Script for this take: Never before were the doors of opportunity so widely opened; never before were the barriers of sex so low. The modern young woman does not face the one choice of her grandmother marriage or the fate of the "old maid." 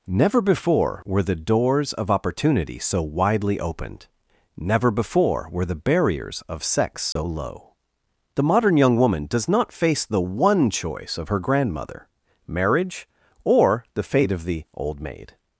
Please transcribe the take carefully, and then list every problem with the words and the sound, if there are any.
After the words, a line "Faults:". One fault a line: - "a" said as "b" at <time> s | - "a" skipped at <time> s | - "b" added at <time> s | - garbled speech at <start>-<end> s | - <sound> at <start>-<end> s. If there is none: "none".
Never before were the doors of opportunity so widely opened; never before were the barriers of sex so low. The modern young woman does not face the one choice of her grandmother marriage or the fate of the "old maid."
Faults:
- dropout at 7.1-7.2 s